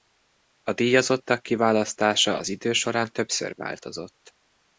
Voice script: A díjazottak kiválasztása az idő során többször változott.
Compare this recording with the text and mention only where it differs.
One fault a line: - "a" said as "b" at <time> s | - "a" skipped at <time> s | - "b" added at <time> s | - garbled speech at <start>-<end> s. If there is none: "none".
none